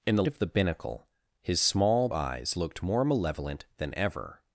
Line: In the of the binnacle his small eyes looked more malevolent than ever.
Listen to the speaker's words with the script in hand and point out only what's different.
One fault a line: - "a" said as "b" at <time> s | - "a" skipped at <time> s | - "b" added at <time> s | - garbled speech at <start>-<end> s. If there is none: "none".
none